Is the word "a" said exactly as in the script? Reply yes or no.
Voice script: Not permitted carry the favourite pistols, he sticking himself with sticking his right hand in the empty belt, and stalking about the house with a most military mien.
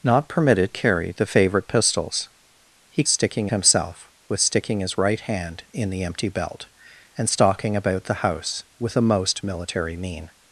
yes